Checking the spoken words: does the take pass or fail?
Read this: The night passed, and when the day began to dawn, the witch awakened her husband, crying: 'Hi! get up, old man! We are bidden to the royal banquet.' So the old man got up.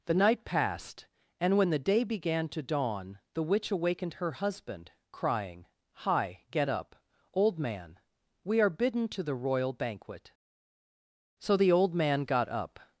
pass